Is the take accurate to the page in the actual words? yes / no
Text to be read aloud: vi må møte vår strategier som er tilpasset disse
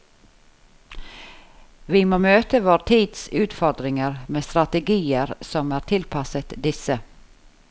no